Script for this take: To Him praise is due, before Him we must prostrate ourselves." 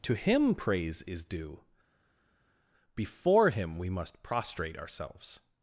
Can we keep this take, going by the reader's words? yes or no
yes